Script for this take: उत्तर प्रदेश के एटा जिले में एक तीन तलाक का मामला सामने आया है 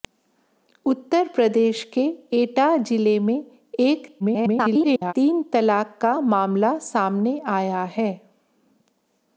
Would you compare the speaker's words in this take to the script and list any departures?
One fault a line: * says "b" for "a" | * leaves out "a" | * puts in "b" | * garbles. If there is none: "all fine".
* garbles